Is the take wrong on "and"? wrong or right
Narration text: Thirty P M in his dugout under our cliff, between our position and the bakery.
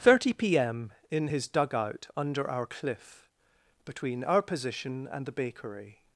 right